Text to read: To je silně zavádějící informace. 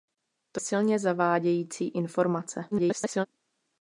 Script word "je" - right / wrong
wrong